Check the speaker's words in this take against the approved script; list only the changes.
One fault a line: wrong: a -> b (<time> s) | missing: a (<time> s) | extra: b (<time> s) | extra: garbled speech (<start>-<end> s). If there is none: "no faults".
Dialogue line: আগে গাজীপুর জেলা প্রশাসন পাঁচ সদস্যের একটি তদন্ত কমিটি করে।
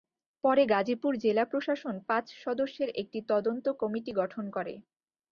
wrong: আগে -> পরে (0.4 s)
extra: গঠন (4.1 s)